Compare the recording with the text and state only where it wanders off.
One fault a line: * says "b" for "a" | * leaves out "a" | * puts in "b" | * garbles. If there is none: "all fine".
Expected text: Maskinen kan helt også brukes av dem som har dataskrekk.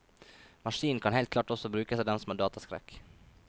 * puts in "klart"